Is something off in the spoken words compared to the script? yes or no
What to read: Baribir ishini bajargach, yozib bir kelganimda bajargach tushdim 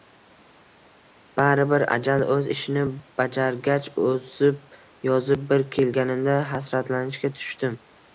yes